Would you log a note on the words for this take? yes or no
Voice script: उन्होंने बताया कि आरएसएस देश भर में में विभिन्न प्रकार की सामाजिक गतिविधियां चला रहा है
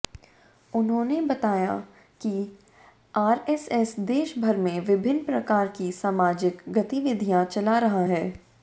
yes